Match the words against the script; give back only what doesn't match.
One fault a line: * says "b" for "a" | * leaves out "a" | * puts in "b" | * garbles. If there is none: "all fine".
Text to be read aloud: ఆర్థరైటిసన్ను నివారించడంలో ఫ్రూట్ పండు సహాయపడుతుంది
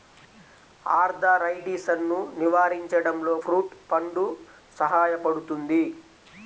all fine